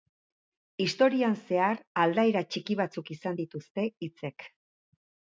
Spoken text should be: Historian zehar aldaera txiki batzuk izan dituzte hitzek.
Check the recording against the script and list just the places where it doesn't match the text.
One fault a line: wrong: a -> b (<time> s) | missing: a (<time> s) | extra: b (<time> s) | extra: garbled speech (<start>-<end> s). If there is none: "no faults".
no faults